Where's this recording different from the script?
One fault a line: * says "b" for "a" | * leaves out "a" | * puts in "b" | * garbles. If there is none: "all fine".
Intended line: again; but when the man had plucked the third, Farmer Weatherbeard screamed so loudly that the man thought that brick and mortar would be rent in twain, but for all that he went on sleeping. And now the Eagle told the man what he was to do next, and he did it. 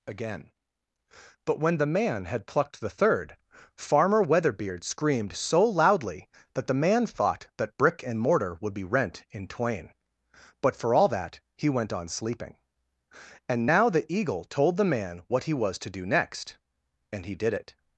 all fine